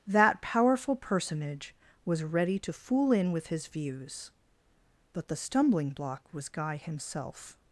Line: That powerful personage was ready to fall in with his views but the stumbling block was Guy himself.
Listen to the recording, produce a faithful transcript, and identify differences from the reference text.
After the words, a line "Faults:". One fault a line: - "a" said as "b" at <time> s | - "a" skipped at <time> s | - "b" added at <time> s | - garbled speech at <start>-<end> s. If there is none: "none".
That powerful personage was ready to fool in with his views but the stumbling block was Guy himself.
Faults:
- "fall" said as "fool" at 2.7 s